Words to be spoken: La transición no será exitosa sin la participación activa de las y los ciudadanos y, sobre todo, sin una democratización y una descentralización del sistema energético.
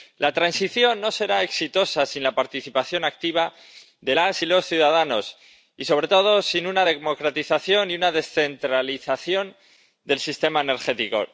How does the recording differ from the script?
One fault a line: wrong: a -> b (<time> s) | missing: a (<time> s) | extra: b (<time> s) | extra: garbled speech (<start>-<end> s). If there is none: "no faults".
no faults